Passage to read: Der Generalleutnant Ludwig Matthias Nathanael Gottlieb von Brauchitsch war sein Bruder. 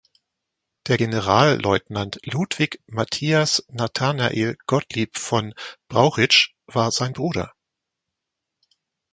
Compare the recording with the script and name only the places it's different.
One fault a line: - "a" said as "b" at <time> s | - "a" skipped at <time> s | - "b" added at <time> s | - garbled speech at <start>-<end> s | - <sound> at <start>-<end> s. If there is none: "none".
none